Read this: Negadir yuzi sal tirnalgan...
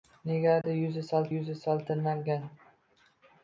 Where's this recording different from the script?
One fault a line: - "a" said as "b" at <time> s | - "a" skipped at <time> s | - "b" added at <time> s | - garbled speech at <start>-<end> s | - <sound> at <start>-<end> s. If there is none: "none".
- dropout at 0.6-0.6 s
- "yuzi sal" added at 1.3 s